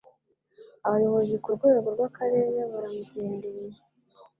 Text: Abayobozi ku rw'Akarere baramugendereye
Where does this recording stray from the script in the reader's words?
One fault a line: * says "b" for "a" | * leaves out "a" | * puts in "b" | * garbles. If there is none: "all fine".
* puts in "rwego"